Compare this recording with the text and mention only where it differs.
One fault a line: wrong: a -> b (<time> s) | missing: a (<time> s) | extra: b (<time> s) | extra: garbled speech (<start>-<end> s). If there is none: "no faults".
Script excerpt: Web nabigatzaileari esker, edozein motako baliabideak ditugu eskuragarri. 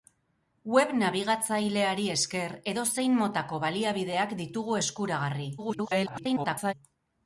extra: garbled speech (5.6-6.7 s)